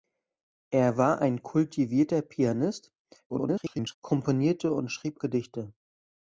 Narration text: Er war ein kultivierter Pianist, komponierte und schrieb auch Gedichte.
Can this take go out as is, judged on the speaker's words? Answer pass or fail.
fail